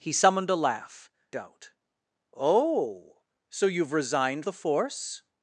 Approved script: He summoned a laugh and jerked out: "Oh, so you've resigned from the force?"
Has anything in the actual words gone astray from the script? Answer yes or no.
yes